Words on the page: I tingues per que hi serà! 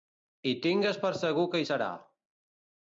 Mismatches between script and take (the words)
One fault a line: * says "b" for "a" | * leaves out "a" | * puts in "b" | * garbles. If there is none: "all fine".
* puts in "segur"